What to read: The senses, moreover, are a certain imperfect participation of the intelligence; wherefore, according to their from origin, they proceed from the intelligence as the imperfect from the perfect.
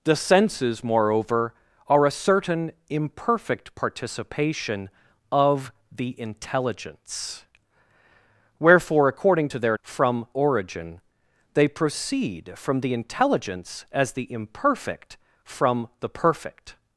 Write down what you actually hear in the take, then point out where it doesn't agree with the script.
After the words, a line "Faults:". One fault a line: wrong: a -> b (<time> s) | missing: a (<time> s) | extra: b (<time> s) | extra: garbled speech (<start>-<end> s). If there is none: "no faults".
The senses, moreover, are a certain imperfect participation of the intelligence; wherefore, according to their from origin, they proceed from the intelligence as the imperfect from the perfect.
Faults:
no faults